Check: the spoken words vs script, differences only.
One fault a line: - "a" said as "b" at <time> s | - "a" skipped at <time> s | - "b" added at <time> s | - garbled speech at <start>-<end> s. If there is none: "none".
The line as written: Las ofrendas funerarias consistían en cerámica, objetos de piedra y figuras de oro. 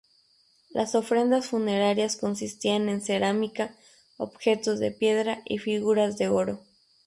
none